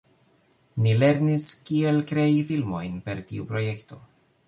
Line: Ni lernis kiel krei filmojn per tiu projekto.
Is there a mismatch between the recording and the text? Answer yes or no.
no